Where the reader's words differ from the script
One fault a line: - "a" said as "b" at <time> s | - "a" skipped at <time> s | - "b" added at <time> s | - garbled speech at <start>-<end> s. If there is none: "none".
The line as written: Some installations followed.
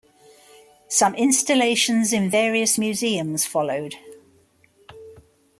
- "in various museums" added at 2.1 s